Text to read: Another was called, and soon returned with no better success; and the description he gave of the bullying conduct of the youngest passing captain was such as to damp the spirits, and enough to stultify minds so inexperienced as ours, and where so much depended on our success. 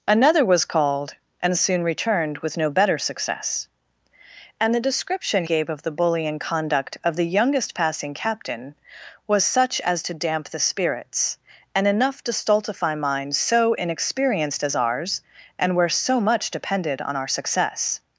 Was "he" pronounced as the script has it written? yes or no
no